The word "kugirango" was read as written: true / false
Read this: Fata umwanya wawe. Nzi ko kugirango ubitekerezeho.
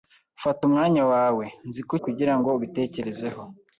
true